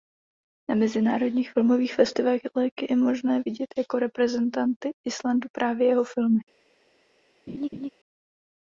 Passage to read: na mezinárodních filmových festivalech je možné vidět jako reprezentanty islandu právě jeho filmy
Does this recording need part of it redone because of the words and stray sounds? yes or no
yes